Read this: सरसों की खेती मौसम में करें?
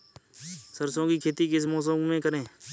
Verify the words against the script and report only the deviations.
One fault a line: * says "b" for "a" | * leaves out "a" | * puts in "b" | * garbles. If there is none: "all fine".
* puts in "किस"